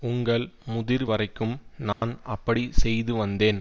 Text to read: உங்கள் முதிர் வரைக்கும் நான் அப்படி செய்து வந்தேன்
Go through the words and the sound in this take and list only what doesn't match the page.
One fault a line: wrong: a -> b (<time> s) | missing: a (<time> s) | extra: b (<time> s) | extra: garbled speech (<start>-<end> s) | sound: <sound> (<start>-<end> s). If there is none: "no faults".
sound: dropout (1.9-2.0 s)